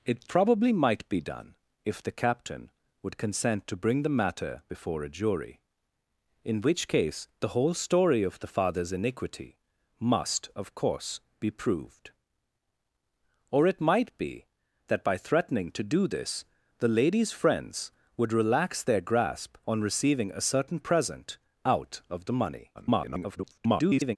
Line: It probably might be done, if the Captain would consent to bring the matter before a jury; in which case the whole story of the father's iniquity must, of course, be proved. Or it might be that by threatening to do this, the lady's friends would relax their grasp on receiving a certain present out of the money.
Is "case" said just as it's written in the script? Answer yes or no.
yes